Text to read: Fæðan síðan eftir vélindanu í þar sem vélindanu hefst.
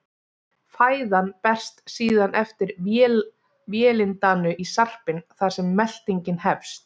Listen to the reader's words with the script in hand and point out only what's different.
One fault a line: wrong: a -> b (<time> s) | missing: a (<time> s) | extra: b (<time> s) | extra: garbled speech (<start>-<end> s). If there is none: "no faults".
extra: berst (1.5 s)
extra: sarpinn (4.7 s)
wrong: vélindanu -> meltingin (5.8 s)